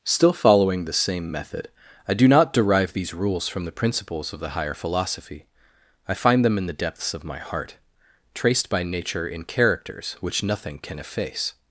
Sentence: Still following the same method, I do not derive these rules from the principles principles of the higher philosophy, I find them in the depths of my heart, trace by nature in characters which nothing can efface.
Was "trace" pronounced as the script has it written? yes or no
no